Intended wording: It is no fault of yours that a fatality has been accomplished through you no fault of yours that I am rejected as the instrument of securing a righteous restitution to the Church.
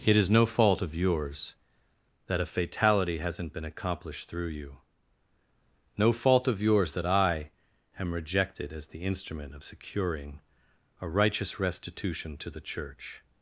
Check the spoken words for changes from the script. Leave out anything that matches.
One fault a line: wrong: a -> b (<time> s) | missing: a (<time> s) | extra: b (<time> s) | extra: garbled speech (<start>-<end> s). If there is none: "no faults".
wrong: has -> hasn't (3.2 s)